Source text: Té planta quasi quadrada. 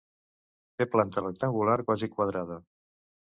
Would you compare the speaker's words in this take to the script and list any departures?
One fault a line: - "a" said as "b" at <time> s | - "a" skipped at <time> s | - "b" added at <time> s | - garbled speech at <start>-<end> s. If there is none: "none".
- "rectangular" added at 1.2 s